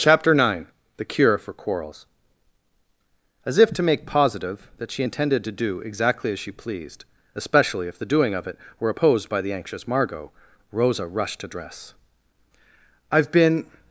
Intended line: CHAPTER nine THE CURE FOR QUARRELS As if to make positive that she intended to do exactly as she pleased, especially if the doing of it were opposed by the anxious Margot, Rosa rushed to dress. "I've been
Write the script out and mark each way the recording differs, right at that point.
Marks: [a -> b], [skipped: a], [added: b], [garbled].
CHAPTER nine THE CURE FOR QUARRELS As if to make positive that she intended to do exactly as she pleased, especially if the doing of it were opposed by the anxious Margot, Rosa rushed to dress. "I've been